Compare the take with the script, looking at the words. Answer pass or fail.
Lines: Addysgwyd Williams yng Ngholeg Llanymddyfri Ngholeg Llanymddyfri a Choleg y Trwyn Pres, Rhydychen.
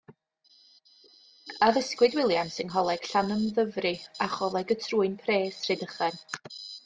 fail